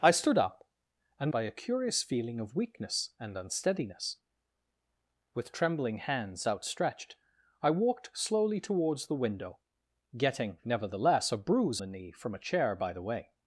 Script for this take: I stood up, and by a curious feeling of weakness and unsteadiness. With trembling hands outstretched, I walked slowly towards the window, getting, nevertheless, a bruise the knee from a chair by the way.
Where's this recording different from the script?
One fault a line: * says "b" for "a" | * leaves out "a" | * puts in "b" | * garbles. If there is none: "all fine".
all fine